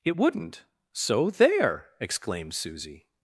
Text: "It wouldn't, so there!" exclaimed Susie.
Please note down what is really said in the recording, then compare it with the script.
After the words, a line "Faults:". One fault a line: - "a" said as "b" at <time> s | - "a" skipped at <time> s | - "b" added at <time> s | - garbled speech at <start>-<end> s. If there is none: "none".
"It wouldn't, so there!" exclaimed Susie.
Faults:
none